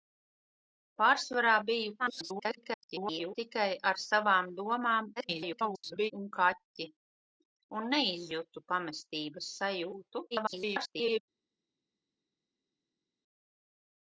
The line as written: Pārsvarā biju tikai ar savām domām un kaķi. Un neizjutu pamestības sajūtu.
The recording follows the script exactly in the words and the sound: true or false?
false